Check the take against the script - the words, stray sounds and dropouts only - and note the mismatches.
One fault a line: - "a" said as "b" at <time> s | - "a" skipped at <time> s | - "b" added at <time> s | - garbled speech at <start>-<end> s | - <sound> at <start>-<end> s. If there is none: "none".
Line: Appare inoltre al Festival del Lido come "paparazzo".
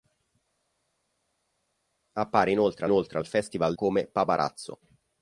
- "inoltre" added at 2.8 s
- "del Lido" skipped at 3.7 s